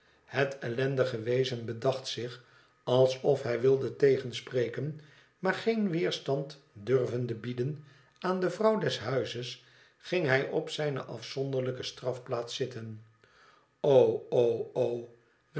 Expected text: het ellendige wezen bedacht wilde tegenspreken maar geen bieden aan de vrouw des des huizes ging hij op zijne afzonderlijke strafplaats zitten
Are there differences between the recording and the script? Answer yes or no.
yes